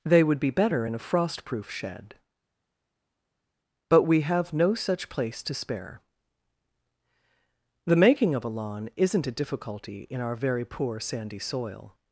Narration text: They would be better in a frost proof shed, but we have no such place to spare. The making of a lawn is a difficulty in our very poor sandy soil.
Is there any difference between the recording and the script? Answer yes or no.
yes